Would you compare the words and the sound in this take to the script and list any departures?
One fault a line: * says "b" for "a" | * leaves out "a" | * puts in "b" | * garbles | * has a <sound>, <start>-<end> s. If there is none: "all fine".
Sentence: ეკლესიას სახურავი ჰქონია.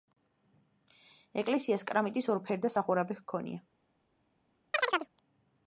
* puts in "კრამიტის ორფერდა"
* has a chirp, 4.7-5.1 s